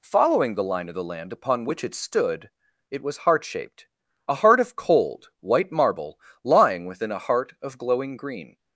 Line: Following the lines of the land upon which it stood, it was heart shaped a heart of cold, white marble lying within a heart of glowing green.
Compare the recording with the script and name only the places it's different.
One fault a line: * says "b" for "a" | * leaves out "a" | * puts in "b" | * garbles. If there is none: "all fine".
* says "line" for "lines"